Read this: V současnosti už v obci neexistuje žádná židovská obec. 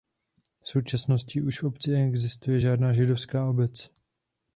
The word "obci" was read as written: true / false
true